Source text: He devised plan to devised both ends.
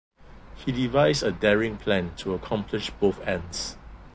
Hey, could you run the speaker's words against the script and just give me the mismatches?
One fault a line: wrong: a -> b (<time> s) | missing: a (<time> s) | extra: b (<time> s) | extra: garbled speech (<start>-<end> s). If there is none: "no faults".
extra: a daring (1.2 s)
wrong: devised -> accomplish (2.3 s)